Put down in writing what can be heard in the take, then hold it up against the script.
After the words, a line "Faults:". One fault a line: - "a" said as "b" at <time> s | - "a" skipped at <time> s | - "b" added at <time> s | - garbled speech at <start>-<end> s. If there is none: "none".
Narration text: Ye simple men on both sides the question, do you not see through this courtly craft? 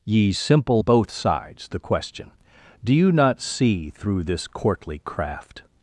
Ye simple both sides the question, do you not see through this courtly craft?
Faults:
- "men on" skipped at 0.8 s